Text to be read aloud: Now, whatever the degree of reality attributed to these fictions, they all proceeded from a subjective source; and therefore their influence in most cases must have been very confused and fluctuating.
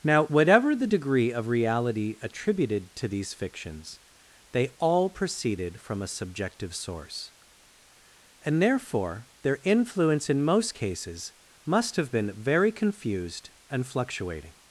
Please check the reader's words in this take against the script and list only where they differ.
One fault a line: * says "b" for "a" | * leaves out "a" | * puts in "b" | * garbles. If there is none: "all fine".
all fine